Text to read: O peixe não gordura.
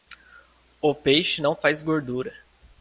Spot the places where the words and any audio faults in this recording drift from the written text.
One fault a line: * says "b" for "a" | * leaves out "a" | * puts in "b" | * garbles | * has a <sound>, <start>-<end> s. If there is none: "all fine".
* puts in "faz"